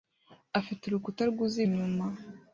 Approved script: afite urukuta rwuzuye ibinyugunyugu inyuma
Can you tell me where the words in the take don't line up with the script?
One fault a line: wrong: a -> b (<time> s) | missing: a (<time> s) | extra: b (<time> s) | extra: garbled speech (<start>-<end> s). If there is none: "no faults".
missing: ibinyugunyugu (1.6 s)